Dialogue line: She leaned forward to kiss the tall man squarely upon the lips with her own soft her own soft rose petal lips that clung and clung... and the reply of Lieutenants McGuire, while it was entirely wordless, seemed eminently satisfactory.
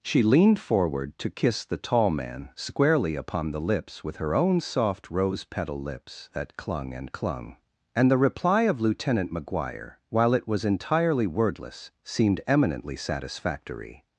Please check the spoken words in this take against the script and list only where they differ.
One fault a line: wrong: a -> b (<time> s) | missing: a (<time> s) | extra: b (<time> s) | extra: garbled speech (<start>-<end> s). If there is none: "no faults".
missing: her own soft (5.1 s)
wrong: Lieutenants -> Lieutenant (8.8 s)